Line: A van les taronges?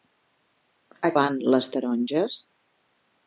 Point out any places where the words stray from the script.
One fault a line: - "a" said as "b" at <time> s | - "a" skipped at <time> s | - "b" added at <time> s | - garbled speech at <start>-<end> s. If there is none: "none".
none